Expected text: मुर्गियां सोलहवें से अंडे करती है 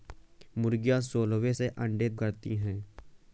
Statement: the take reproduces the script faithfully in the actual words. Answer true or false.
true